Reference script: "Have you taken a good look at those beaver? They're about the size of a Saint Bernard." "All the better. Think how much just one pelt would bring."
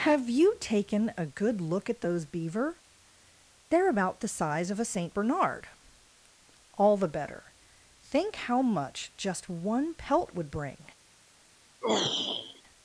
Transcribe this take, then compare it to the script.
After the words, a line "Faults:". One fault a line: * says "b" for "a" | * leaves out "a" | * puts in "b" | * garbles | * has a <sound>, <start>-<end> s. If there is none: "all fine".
"Have you taken a good look at those beaver? They're about the size of a Saint Bernard." "All the better. Think how much just one pelt would bring."
Faults:
* has a throat clearing, 11.8-12.6 s